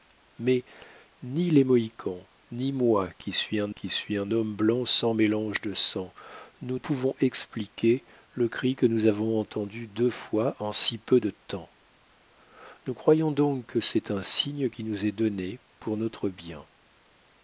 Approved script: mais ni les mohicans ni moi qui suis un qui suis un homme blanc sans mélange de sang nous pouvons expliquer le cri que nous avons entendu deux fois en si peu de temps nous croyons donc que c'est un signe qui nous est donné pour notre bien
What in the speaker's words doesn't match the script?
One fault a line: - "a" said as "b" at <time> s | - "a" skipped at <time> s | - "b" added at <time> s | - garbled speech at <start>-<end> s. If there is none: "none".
none